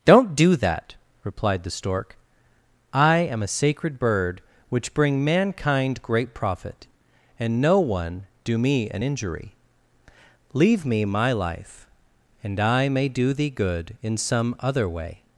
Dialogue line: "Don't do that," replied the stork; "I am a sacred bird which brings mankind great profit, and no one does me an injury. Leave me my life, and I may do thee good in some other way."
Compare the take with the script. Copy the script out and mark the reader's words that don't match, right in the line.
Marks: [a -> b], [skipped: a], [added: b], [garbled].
"Don't do that," replied the stork; "I am a sacred bird which [brings -> bring] mankind great profit, and no one [does -> do] me an injury. Leave me my life, and I may do thee good in some other way."